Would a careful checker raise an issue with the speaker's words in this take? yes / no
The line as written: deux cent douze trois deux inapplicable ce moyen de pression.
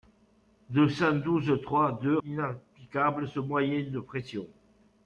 no